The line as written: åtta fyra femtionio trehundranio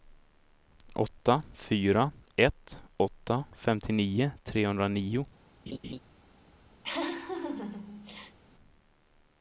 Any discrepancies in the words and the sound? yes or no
yes